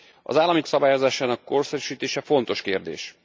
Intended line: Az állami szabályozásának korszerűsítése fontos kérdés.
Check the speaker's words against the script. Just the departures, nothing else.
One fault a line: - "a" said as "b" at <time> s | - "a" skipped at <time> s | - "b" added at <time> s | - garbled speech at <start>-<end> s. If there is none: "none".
none